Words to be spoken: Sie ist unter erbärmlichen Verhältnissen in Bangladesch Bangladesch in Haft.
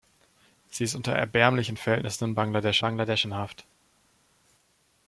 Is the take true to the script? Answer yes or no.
yes